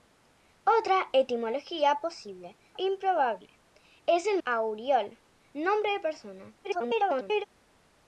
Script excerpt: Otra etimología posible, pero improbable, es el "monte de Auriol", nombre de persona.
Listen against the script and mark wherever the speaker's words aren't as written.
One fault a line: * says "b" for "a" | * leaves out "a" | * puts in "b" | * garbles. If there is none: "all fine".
* leaves out "pero"
* leaves out "monte de"
* garbles